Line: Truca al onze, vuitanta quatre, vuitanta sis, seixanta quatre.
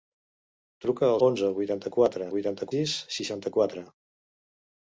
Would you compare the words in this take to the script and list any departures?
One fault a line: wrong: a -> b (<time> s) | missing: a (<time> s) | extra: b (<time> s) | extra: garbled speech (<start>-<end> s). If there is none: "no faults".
no faults